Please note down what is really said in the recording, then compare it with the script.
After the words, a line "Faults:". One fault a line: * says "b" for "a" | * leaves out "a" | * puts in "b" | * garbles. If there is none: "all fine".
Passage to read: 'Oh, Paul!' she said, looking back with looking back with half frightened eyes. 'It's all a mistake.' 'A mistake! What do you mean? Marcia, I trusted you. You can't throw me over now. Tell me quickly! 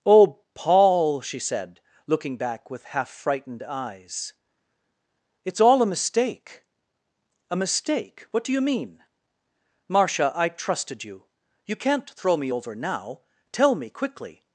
'Oh, Paul!' she said, looking back with half frightened eyes. 'It's all a mistake.' 'A mistake! What do you mean? Marcia, I trusted you. You can't throw me over now. Tell me quickly!
Faults:
* leaves out "looking back with"